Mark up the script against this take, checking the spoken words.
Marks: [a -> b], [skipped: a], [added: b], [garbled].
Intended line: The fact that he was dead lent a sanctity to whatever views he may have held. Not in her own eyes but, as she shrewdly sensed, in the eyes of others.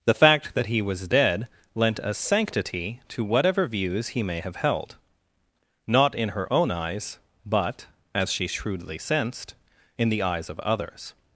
The fact that he was dead lent a sanctity to whatever views he may have held. Not in her own eyes but, as she shrewdly sensed, in the eyes of others.